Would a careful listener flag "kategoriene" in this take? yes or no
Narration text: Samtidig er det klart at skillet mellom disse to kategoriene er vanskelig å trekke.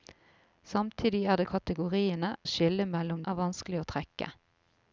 yes